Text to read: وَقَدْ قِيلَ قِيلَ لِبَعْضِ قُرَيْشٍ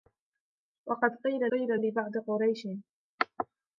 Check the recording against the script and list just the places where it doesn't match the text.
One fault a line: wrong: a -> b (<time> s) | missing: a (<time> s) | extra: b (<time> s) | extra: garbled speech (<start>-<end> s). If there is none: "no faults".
no faults